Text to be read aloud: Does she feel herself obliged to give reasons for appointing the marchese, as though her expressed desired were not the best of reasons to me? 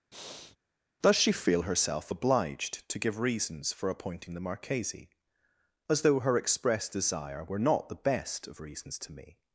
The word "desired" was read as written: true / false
false